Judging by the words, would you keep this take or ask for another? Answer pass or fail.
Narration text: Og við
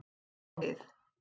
pass